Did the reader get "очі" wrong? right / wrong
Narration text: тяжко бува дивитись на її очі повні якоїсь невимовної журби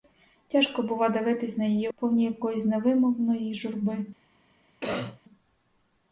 wrong